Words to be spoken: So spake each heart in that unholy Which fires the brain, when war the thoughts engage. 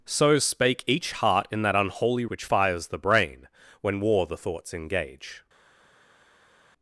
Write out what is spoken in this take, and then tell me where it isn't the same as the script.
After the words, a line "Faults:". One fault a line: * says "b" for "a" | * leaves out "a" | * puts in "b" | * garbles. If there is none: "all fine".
So spake each heart in that unholy Which fires the brain, when war the thoughts engage.
Faults:
all fine